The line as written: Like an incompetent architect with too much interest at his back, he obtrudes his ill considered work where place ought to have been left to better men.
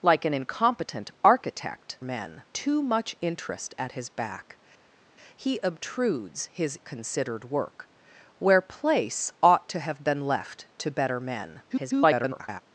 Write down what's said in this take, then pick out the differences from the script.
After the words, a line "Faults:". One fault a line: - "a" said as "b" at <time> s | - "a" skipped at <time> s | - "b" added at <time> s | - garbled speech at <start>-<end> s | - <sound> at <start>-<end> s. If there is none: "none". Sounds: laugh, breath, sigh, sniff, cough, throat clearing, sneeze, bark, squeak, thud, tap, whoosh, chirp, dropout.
Like an incompetent architect men too much interest at his back, he obtrudes his considered work where place ought to have been left to better men. [garbled]
Faults:
- "with" said as "men" at 2.0 s
- "ill" skipped at 6.8 s
- garbled speech at 11.7-12.6 s